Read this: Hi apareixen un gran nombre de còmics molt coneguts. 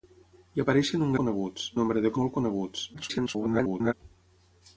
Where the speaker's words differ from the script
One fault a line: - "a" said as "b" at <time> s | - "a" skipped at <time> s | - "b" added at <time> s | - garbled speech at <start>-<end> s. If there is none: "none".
- "gran" said as "coneguts" at 1.2 s
- "còmics" skipped at 2.1 s
- garbled speech at 2.9-3.9 s